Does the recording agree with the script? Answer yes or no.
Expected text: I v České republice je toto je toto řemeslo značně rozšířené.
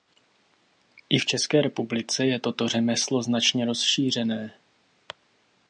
no